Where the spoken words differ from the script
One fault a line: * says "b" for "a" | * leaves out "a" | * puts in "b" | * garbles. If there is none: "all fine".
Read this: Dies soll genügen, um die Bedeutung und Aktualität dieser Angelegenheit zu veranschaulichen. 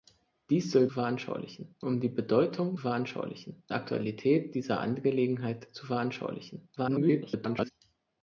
* says "veranschaulichen" for "genügen"
* says "veranschaulichen" for "und"
* garbles